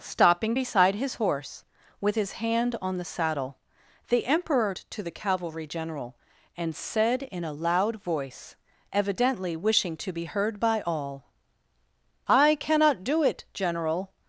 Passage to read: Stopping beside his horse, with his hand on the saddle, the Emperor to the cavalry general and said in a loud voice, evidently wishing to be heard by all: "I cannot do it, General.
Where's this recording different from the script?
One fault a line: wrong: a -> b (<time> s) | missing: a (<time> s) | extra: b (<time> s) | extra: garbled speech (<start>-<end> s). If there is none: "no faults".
no faults